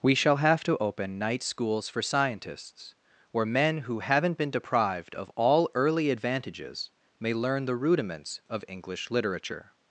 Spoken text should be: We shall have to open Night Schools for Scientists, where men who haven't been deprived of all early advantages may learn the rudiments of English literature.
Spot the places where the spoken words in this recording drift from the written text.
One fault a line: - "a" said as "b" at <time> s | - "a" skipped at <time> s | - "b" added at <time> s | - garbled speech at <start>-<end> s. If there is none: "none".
none